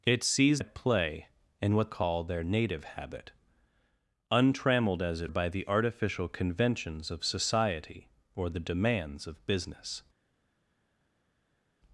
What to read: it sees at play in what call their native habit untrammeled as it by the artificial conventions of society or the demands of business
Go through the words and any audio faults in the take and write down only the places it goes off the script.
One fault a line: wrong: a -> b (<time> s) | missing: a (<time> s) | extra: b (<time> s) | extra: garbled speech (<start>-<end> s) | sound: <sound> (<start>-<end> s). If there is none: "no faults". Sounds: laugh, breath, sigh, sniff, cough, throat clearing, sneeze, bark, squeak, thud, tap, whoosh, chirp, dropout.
no faults